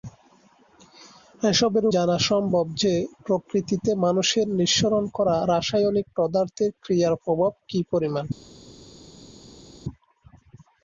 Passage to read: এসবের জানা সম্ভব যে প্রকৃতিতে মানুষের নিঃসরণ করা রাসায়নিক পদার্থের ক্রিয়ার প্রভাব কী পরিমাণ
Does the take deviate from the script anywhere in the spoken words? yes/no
no